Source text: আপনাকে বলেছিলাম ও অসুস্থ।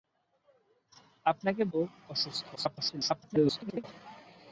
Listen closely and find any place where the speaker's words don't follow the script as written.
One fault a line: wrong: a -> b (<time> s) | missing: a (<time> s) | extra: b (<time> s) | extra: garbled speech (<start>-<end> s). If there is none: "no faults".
missing: বলেছিলাম (1.6 s)
extra: garbled speech (2.6-3.8 s)